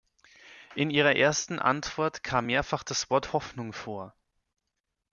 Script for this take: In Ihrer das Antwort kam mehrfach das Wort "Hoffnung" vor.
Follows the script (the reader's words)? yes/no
no